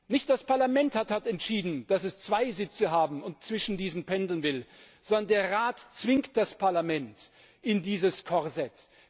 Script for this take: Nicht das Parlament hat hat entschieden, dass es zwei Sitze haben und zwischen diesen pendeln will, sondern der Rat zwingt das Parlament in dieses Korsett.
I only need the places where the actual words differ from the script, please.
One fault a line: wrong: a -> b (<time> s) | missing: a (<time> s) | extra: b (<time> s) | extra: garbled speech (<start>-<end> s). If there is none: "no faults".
no faults